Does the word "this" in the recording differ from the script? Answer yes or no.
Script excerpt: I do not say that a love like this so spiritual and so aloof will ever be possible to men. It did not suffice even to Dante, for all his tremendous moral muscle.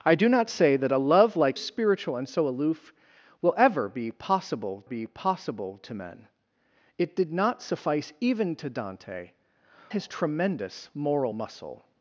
yes